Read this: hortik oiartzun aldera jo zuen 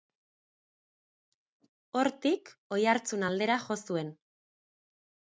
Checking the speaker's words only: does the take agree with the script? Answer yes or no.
yes